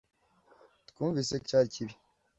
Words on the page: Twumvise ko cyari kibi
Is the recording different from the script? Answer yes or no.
no